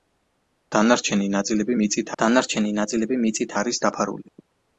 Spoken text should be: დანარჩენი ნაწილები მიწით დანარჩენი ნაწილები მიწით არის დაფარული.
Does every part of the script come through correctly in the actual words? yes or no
yes